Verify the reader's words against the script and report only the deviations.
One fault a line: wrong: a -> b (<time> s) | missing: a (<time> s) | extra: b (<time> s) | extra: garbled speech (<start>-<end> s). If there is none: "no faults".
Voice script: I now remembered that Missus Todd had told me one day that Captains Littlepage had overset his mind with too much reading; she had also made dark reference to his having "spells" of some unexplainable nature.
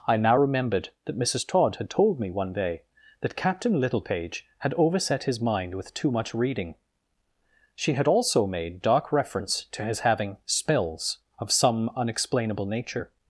wrong: Captains -> Captain (3.4 s)